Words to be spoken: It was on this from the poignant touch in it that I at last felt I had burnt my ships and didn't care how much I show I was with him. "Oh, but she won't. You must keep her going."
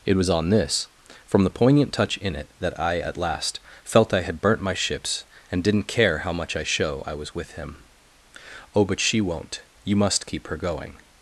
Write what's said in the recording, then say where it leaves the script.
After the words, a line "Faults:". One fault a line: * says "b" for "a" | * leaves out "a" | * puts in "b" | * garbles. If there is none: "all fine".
It was on this from the poignant touch in it that I at last felt I had burnt my ships and didn't care how much I show I was with him. "Oh, but she won't. You must keep her going."
Faults:
all fine